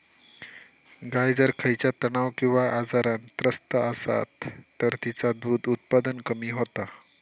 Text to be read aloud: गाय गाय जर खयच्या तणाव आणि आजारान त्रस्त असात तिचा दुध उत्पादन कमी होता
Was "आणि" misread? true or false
true